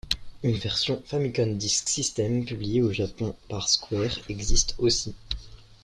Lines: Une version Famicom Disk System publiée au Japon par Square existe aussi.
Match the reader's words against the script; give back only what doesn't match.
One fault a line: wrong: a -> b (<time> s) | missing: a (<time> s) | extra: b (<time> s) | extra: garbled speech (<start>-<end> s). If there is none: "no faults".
no faults